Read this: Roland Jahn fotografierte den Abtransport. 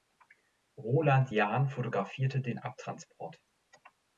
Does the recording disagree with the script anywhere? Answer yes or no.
no